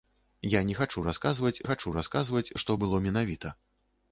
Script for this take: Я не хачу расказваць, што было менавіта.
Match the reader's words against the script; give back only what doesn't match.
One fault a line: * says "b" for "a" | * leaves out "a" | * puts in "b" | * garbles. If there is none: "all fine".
* puts in "хачу расказваць"